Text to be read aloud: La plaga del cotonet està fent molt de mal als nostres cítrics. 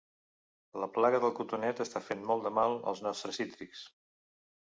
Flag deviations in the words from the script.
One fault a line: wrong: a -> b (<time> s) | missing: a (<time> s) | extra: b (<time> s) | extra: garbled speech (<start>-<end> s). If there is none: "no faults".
no faults